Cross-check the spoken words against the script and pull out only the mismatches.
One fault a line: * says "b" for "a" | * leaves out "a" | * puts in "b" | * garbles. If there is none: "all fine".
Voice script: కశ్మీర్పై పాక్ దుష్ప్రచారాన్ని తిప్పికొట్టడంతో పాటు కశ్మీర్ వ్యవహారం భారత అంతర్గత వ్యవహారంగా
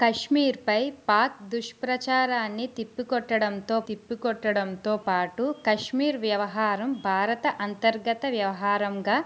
* puts in "తిప్పికొట్టడంతో"